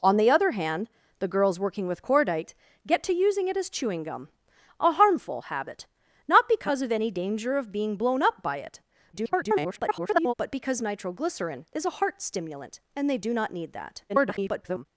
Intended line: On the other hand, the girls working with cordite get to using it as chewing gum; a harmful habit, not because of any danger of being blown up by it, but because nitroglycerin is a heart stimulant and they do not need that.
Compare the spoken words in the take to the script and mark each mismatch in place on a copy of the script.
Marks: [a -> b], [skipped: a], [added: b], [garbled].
On the other hand, the girls working with cordite get to using it as chewing gum; a harmful habit, not because of any danger of being blown up by it, [garbled] but because nitroglycerin is a heart stimulant and they do not need that. [garbled]